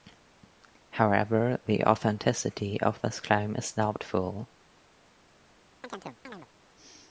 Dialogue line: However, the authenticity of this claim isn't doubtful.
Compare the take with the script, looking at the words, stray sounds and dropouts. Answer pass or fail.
fail